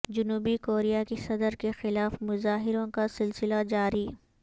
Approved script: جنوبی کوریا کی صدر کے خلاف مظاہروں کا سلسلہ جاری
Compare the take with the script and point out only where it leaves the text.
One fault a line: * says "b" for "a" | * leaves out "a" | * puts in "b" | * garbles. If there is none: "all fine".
all fine